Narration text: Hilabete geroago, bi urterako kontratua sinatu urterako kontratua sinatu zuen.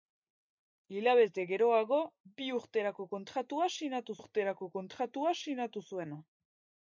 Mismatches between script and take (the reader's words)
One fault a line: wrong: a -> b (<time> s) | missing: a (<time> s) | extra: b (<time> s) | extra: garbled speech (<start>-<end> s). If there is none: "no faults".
no faults